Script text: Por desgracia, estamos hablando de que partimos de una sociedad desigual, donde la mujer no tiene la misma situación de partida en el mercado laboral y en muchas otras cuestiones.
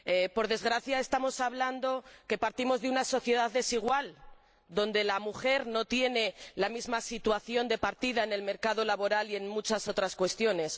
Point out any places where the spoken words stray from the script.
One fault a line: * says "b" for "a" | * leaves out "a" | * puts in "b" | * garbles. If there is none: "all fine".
all fine